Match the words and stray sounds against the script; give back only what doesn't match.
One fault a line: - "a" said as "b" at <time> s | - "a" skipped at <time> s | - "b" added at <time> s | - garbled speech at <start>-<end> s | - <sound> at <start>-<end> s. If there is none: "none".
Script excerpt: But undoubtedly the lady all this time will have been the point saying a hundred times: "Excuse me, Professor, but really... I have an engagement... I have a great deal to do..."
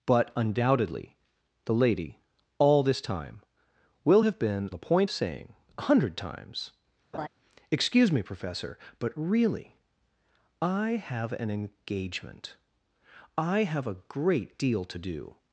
- laugh at 7.1-7.3 s